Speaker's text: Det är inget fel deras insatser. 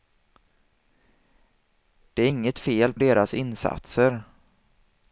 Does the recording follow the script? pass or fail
pass